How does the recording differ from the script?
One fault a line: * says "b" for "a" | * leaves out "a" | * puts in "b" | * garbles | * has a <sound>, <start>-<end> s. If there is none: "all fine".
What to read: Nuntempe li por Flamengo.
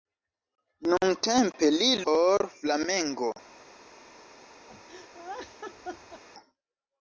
* has a laugh, 4.7-6.2 s